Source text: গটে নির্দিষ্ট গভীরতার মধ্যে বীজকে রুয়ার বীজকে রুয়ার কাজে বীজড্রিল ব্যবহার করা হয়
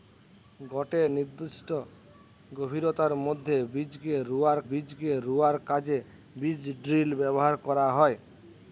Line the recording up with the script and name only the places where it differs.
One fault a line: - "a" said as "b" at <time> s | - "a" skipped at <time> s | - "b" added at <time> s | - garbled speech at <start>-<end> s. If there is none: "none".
none